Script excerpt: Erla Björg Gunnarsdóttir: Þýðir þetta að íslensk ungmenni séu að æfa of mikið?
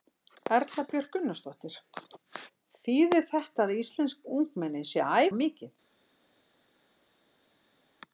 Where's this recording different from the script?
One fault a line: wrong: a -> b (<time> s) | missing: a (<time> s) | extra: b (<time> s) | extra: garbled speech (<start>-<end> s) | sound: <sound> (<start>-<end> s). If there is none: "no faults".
missing: æfa (5.3 s)